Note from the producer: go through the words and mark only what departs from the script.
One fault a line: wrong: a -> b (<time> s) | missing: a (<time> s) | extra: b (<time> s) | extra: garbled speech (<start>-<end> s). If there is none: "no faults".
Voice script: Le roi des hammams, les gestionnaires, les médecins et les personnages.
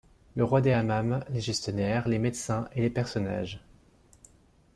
no faults